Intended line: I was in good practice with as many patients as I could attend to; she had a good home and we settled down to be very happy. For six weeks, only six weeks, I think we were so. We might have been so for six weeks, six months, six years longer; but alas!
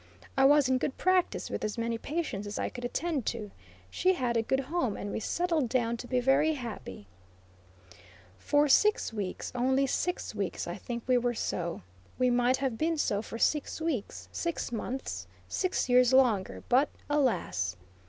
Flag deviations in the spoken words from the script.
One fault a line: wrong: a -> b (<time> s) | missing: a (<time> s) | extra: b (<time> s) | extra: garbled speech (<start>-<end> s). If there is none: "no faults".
no faults